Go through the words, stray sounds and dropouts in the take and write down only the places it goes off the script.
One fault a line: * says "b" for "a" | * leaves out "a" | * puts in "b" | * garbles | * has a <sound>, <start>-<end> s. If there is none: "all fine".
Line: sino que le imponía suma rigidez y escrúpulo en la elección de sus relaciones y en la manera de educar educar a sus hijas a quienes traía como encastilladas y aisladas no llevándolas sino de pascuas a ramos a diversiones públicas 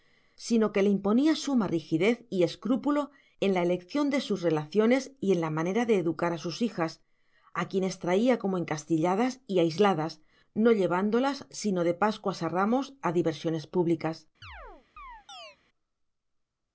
* leaves out "educar"
* has a chirp, 14.4-15.6 s